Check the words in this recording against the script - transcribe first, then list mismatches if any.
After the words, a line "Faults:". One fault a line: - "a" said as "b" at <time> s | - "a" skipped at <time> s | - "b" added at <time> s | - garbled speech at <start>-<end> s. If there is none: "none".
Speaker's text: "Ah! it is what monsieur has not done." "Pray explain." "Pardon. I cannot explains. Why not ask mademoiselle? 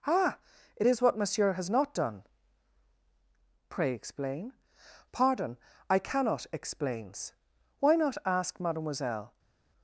"Ah! it is what monsieur has not done." "Pray explain." "Pardon. I cannot explains. Why not ask mademoiselle?
Faults:
none